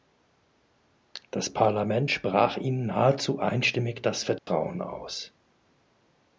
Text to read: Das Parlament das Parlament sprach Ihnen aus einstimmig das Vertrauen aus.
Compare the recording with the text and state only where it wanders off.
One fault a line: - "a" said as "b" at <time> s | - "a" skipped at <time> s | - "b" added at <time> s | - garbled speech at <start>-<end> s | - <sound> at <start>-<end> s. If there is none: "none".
- "das Parlament" skipped at 2.1 s
- "aus" said as "nahezu" at 2.8 s
- dropout at 4.4-4.5 s